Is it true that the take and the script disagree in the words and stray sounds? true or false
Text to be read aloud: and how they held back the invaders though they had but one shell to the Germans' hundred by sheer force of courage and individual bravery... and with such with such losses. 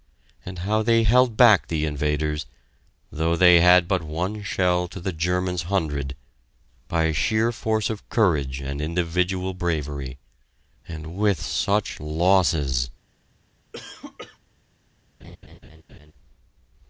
true